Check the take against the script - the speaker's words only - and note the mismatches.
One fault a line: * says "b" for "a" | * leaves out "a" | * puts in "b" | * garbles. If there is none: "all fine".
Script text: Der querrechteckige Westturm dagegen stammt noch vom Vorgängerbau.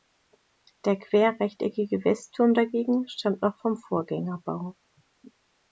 all fine